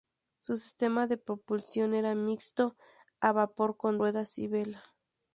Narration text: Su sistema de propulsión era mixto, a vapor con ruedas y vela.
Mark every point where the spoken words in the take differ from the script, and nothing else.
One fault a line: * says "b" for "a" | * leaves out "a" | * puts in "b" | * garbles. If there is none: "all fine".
all fine